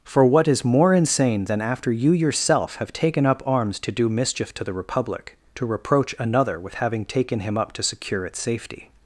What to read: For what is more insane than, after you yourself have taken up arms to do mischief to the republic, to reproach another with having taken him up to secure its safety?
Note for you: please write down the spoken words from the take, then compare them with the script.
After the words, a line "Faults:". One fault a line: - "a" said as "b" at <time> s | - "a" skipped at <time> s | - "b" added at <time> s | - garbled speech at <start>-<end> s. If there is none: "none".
For what is more insane than, after you yourself have taken up arms to do mischief to the republic, to reproach another with having taken him up to secure its safety?
Faults:
none